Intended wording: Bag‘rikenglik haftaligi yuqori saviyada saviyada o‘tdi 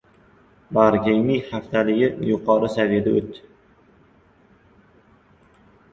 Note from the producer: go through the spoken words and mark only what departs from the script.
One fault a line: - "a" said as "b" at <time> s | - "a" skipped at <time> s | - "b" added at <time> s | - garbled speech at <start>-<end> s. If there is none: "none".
- "saviyada" skipped at 3.2 s